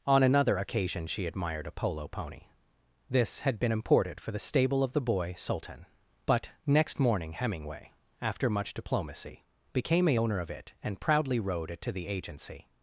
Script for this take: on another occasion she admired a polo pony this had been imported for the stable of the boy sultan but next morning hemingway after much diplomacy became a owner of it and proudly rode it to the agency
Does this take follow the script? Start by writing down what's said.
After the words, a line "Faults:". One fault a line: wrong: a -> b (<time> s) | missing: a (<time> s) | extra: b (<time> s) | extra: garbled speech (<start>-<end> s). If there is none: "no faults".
on another occasion she admired a polo pony this had been imported for the stable of the boy sultan but next morning hemingway after much diplomacy became a owner of it and proudly rode it to the agency
Faults:
no faults